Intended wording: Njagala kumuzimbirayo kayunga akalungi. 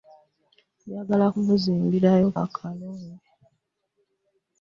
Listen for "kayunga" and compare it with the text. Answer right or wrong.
wrong